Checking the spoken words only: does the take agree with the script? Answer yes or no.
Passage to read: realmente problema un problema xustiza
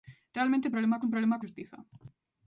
yes